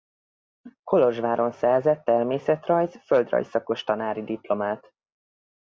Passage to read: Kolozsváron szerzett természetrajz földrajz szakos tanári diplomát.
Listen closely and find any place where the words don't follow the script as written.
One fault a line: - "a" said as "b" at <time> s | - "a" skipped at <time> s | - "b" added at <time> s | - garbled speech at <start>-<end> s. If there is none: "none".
none